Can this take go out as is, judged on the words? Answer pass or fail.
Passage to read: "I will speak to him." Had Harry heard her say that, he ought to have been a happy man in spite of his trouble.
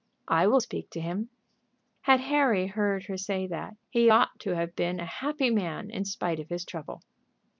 pass